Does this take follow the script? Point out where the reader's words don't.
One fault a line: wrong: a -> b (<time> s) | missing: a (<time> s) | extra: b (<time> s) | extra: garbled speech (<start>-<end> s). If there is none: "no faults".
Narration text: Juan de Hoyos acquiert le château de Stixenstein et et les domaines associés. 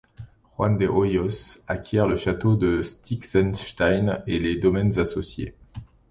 missing: et (4.4 s)